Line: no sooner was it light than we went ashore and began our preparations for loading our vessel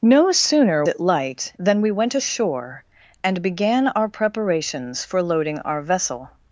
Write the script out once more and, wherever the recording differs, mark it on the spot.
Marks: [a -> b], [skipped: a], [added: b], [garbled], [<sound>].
no sooner [skipped: was] it light than we went ashore and began our preparations for loading our vessel